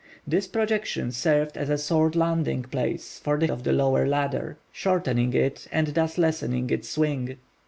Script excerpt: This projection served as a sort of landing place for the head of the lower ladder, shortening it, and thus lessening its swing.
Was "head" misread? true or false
true